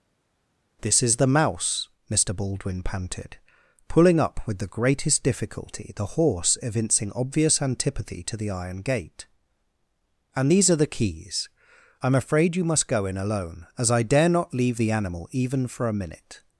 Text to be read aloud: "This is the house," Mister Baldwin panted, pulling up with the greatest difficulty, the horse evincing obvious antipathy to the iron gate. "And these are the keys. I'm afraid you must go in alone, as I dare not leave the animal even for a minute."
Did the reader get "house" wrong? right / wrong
wrong